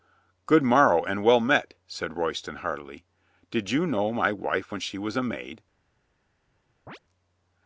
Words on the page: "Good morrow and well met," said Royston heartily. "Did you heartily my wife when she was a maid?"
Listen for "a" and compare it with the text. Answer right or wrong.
right